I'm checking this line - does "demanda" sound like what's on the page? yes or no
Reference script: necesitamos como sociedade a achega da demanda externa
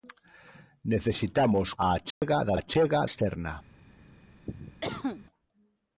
no